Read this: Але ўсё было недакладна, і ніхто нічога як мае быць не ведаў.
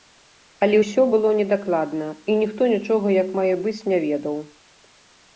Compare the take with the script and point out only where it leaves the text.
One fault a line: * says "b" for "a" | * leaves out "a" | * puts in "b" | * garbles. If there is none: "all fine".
all fine